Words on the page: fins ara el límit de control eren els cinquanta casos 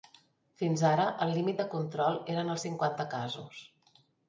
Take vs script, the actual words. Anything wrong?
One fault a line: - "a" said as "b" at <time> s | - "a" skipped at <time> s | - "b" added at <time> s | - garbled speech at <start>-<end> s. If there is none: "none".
none